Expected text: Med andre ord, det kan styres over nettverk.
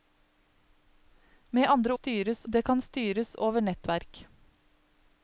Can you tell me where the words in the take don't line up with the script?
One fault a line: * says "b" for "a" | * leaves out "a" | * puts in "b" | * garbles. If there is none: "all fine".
* says "styres" for "ord"